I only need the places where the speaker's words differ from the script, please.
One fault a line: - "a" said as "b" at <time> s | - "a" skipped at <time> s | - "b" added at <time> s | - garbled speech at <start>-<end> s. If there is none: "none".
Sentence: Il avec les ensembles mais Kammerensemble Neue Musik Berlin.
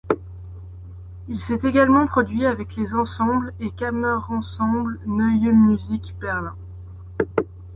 - "s'est également produit" added at 1.4 s
- "mais" said as "et" at 3.6 s